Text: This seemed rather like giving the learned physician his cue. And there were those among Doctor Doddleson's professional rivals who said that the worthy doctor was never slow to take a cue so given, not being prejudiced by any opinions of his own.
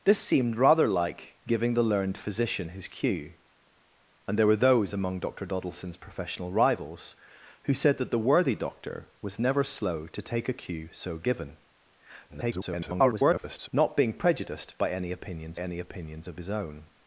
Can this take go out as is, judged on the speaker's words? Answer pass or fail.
fail